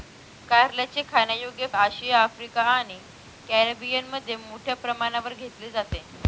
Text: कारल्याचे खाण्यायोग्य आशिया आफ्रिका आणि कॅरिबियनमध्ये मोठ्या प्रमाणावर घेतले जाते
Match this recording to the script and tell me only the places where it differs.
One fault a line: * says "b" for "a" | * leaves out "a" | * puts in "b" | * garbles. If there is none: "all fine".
all fine